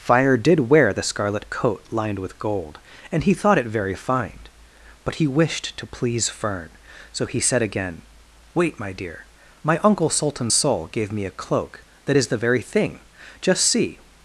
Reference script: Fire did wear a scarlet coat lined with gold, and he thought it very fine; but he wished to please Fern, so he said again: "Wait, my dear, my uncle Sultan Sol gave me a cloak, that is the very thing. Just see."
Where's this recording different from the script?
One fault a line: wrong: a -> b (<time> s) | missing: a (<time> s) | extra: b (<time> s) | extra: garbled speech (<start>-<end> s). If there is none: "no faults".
wrong: a -> the (0.9 s)